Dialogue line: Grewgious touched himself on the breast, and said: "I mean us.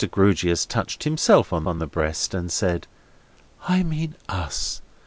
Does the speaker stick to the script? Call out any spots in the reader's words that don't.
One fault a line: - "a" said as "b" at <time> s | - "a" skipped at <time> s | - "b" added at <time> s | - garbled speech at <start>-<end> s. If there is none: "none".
- "on" added at 1.7 s